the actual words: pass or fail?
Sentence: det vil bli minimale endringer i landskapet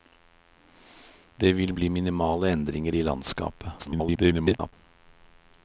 fail